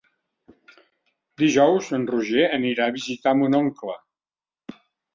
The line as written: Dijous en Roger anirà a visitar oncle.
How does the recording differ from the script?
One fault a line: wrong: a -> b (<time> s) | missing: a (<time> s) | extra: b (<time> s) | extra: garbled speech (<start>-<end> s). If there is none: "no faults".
extra: mon (3.5 s)